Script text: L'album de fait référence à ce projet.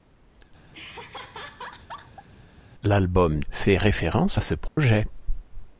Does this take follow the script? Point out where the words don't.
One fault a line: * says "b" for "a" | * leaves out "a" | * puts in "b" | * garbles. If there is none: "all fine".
* leaves out "de"